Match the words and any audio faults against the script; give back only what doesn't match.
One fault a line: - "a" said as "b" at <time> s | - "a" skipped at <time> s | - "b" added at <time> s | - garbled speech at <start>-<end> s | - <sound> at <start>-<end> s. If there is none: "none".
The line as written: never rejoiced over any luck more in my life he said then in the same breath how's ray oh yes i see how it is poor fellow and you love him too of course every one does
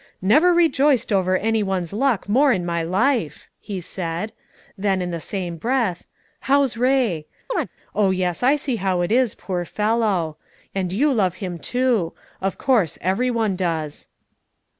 - "one's" added at 1.6 s
- chirp at 7.5-7.7 s